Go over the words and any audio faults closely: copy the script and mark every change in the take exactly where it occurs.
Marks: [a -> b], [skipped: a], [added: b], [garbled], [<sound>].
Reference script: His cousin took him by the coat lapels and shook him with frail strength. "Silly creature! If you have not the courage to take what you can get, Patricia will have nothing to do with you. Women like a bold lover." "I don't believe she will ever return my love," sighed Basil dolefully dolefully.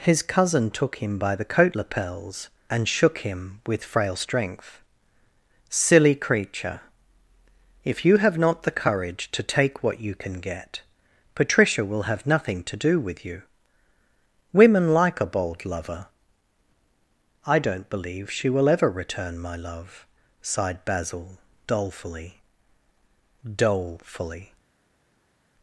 His cousin took him by the coat lapels and shook him with frail strength. "Silly creature! If you have not the courage to take what you can get, Patricia will have nothing to do with you. Women like a bold lover." "I don't believe she will ever return my love," sighed Basil dolefully dolefully.